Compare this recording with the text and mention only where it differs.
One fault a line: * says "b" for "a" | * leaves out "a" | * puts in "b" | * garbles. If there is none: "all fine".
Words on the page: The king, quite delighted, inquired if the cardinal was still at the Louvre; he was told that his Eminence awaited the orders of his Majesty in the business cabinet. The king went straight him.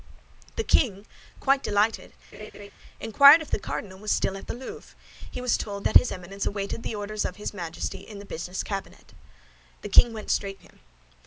all fine